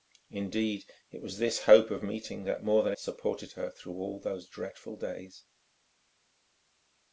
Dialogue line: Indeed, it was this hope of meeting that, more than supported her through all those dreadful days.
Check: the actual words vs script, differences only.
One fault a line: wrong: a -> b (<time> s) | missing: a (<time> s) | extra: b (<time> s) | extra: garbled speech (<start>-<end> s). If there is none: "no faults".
no faults